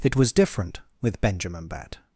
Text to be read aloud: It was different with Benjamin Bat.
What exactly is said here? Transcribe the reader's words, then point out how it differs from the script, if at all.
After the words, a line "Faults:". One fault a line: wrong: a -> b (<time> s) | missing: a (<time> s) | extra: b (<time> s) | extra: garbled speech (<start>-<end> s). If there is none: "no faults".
It was different with Benjamin Bat.
Faults:
no faults